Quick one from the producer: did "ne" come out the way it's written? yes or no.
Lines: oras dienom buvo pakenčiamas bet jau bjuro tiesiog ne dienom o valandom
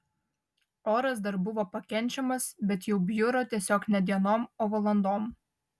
yes